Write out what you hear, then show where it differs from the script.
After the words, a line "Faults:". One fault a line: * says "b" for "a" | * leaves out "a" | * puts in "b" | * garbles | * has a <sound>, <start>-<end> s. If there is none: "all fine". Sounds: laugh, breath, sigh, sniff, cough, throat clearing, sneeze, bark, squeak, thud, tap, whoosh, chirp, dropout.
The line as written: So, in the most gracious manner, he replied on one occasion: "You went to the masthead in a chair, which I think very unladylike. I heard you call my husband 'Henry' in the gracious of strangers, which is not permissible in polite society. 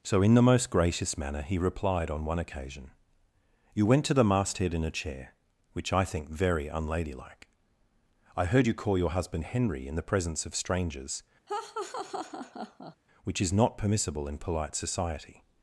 So, in the most gracious manner, he replied on one occasion: "You went to the masthead in a chair, which I think very unladylike. I heard you call your husband 'Henry' in the presence of strangers, which is not permissible in polite society.
Faults:
* says "your" for "my"
* says "presence" for "gracious"
* has a laugh, 11.5-13.0 s